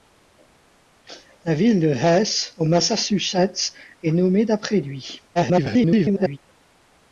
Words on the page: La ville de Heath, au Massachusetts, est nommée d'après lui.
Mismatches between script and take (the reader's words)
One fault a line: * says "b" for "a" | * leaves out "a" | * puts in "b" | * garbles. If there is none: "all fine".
* garbles